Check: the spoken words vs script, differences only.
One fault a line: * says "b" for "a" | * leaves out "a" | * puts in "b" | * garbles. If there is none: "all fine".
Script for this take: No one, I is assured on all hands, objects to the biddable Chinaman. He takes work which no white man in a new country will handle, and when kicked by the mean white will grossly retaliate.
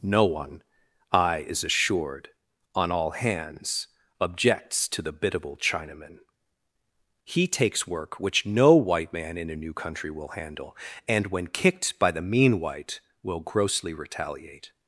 all fine